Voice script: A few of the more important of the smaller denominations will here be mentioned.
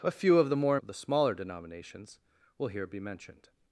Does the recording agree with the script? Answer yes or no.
no